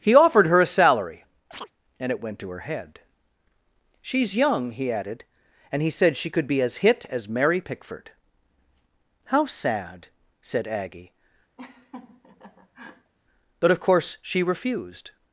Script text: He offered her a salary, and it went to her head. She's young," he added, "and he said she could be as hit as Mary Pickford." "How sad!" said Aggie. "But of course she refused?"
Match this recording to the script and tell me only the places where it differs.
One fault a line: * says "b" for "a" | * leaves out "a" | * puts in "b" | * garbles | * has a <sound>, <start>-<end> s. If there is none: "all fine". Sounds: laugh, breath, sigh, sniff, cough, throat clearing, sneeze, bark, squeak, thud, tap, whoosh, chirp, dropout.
* has a chirp, 1.5-1.7 s
* has a laugh, 11.6-13.1 s